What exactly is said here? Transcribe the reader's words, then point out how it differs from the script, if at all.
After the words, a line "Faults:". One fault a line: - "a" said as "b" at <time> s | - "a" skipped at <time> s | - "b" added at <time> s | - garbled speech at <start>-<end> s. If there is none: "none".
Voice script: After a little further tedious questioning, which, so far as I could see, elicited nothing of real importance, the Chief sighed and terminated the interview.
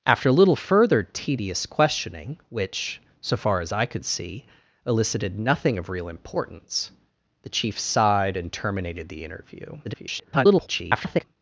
After a little further tedious questioning, which, so far as I could see, elicited nothing of real importance, the Chief sighed and terminated the interview. [garbled]
Faults:
- garbled speech at 9.8-11.2 s